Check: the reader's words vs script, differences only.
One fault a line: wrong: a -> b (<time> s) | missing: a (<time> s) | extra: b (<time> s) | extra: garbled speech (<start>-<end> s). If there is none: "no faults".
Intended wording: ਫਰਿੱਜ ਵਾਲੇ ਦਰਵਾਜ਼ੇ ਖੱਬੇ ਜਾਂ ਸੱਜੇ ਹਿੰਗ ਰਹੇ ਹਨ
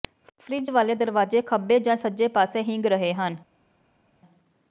extra: ਪਾਸੇ (2.3 s)